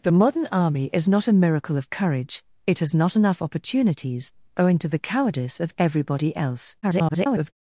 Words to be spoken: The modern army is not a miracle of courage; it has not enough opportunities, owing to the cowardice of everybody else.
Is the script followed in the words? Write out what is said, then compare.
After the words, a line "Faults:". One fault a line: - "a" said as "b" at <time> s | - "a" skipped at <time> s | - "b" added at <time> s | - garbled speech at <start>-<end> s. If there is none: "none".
The modern army is not a miracle of courage; it has not enough opportunities, owing to the cowardice of everybody else. [garbled]
Faults:
- garbled speech at 6.8-7.5 s